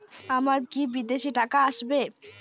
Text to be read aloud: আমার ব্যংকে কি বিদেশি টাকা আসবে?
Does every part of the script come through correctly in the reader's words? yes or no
no